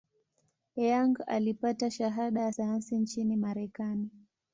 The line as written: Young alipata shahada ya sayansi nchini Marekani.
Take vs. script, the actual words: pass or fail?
pass